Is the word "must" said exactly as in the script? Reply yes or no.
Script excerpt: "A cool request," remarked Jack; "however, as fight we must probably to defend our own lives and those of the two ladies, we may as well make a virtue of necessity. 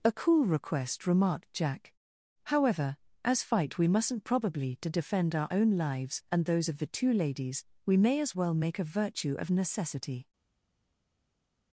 no